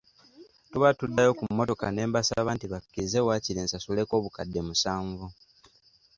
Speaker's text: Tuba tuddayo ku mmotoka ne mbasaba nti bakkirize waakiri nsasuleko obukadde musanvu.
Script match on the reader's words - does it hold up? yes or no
yes